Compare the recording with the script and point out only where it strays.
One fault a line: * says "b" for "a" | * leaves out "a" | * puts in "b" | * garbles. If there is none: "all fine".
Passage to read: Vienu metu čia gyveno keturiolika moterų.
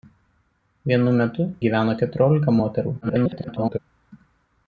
* leaves out "čia"
* garbles